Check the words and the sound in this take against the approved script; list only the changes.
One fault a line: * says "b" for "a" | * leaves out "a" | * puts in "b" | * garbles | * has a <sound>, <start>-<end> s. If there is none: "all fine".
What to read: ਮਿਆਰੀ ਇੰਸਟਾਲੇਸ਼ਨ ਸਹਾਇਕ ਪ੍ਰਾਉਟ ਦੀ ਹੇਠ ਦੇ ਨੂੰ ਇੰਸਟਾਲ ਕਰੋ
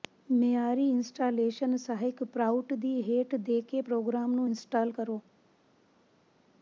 * puts in "ਕੇ ਪ੍ਰੋਗਰਾਮ"